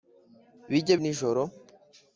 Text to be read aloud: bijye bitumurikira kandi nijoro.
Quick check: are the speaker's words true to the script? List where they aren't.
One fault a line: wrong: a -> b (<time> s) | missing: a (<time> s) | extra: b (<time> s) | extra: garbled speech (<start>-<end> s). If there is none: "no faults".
missing: bitumurikira kandi (0.9 s)